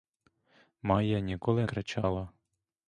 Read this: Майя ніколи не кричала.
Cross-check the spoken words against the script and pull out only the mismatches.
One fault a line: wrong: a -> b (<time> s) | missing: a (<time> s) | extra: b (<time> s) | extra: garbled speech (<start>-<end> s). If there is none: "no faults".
missing: не (1.7 s)